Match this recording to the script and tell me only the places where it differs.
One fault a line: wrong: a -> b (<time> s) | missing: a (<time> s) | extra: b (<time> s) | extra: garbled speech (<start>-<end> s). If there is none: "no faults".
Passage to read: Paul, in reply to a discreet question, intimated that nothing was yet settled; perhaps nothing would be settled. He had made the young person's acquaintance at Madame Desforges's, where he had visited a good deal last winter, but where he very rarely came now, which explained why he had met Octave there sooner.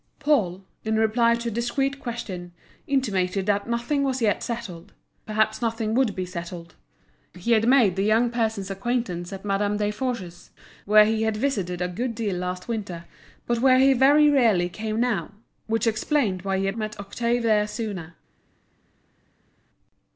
no faults